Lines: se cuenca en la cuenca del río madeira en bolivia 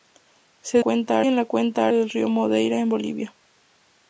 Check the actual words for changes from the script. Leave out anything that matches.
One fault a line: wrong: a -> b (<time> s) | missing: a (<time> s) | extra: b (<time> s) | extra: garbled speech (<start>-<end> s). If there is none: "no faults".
no faults